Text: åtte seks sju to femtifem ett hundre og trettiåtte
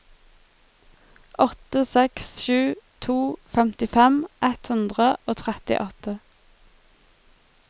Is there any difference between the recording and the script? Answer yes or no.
no